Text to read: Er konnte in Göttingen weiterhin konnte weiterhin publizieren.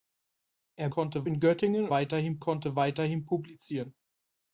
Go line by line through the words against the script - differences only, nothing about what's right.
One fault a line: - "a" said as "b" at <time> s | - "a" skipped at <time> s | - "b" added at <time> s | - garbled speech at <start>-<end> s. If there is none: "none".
none